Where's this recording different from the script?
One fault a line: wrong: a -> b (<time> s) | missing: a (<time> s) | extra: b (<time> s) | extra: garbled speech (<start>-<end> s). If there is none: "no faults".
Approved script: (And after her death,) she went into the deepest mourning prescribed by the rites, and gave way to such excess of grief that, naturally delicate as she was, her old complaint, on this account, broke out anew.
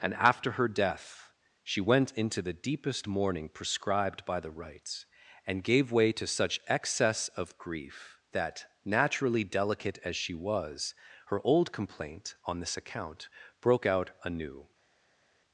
no faults